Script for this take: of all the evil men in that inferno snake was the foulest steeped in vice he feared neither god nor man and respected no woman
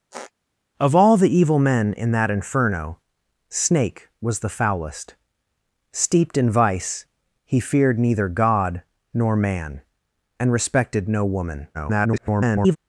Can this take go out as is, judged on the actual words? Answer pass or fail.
fail